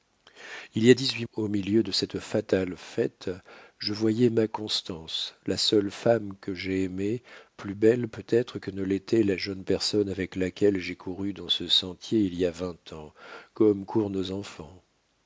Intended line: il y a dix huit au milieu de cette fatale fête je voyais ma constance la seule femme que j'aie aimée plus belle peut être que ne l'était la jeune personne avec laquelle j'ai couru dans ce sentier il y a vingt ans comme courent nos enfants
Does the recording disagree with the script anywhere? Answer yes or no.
no